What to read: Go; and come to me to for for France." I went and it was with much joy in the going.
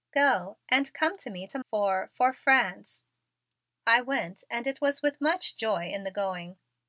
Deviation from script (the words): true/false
false